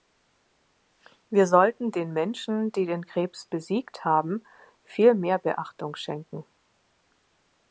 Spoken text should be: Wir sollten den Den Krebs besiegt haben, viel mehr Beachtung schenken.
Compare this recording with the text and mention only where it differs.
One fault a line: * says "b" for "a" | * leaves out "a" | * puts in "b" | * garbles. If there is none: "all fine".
* puts in "Menschen die"